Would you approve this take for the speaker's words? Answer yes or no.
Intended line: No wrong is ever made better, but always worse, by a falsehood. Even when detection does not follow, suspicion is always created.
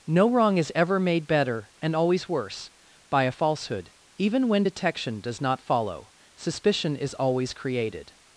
no